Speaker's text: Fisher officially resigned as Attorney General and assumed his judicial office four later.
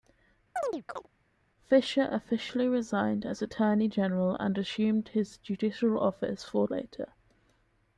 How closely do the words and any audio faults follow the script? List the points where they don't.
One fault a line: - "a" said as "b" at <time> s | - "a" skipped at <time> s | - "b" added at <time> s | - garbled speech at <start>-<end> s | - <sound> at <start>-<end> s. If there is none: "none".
- chirp at 0.6-1.1 s